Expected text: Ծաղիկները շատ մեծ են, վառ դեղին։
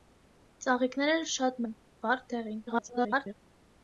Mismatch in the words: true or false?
true